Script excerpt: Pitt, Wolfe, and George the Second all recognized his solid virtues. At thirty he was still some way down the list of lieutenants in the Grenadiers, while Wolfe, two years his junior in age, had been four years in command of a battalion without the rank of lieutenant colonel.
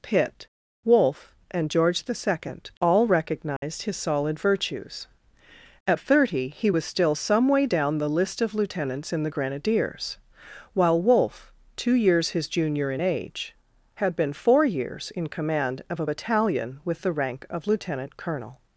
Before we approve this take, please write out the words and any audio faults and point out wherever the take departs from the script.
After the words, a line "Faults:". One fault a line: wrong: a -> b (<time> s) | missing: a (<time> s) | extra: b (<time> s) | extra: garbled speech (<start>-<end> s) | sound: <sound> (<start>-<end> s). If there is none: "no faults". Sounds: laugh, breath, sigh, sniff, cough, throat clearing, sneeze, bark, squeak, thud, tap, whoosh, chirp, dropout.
Pitt, Wolfe, and George the Second all recognized his solid virtues. At thirty he was still some way down the list of lieutenants in the Grenadiers, while Wolfe, two years his junior in age, had been four years in command of a battalion with the rank of lieutenant colonel.
Faults:
sound: dropout (3.6-3.6 s)
wrong: without -> with (16.8 s)